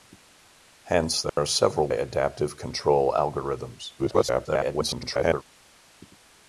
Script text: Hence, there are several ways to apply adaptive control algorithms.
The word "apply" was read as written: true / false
false